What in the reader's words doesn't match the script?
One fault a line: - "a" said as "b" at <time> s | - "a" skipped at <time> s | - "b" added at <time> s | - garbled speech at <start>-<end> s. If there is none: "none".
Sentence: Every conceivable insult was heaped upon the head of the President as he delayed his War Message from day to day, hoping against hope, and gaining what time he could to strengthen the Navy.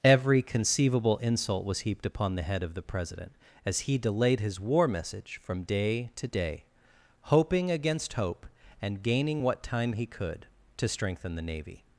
none